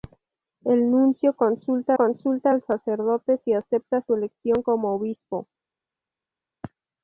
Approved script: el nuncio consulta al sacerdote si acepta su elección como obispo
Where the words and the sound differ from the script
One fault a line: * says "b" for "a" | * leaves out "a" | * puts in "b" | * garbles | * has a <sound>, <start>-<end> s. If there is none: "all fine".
* puts in "consulta"